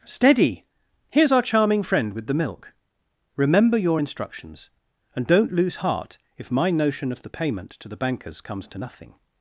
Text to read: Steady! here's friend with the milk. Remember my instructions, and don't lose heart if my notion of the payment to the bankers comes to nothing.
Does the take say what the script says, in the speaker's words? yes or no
no